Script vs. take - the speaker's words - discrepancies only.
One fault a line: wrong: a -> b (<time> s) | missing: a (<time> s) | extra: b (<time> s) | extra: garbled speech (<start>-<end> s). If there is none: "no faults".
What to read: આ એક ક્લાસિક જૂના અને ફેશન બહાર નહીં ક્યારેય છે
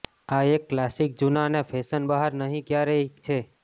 no faults